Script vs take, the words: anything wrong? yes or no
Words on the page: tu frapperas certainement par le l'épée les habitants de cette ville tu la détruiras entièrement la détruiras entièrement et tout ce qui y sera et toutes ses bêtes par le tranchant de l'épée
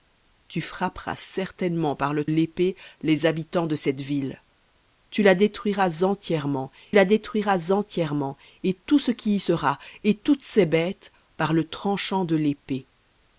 no